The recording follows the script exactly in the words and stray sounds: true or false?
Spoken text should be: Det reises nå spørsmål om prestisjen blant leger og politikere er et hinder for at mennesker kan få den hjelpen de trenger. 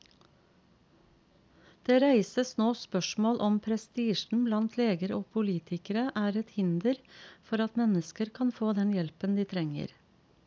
true